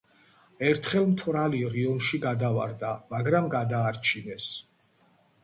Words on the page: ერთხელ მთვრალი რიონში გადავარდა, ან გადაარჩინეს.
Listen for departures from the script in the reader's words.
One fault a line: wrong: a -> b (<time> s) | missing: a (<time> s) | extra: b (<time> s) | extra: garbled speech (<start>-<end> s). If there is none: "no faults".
wrong: ან -> მაგრამ (3.1 s)